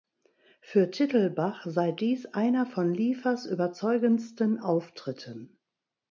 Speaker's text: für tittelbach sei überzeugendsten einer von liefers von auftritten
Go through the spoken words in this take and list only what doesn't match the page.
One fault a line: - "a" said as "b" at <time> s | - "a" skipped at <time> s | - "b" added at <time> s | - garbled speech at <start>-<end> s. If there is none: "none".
- "überzeugendsten" said as "dies" at 1.9 s
- "von" said as "überzeugendsten" at 3.5 s